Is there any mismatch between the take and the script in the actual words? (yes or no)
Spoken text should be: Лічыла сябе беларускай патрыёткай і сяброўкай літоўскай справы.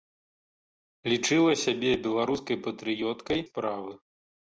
yes